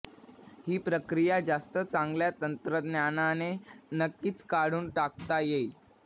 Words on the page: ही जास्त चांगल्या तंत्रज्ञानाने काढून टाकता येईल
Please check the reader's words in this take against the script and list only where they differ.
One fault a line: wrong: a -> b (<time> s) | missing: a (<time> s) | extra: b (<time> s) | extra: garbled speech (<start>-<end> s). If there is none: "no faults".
extra: प्रक्रिया (0.8 s)
extra: नक्कीच (3.9 s)